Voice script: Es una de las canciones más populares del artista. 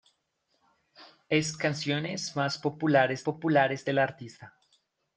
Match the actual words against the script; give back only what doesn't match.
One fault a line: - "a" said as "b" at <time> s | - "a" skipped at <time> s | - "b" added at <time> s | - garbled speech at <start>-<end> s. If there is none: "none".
- "una de las" skipped at 1.6 s
- "populares" added at 3.2 s